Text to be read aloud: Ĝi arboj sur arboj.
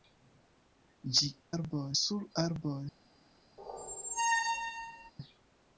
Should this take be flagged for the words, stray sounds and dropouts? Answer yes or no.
yes